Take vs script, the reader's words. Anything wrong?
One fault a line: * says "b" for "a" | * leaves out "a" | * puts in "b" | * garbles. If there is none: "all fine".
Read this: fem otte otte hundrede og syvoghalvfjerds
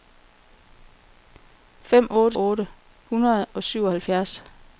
all fine